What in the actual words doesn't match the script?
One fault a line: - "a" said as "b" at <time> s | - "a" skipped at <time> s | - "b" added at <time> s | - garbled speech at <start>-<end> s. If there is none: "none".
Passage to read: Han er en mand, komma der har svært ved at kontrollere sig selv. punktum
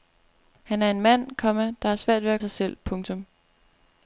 - "kontrollere" skipped at 2.4 s